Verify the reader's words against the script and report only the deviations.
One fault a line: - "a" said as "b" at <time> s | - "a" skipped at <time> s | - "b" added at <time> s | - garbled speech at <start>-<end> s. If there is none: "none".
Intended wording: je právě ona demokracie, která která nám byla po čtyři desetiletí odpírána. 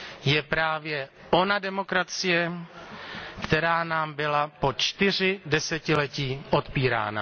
- "která" skipped at 3.8 s